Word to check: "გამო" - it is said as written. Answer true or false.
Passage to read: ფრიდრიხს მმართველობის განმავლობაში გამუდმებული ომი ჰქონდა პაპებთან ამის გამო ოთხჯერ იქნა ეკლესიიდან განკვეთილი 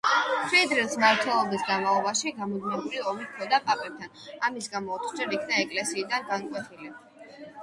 true